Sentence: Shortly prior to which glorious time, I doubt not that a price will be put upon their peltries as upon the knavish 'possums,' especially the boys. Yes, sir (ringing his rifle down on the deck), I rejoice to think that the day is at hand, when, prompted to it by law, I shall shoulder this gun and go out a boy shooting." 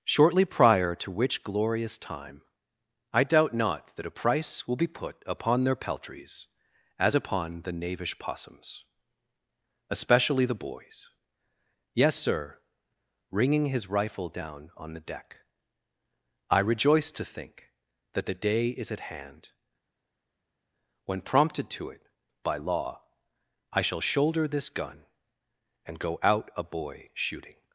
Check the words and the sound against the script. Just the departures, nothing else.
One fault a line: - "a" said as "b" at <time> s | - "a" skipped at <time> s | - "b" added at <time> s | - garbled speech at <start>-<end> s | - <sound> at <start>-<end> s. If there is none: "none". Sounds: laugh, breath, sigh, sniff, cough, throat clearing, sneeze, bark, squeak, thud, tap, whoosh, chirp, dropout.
none